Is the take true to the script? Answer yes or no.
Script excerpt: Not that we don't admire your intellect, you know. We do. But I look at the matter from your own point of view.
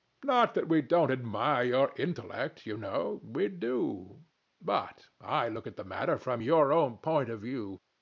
yes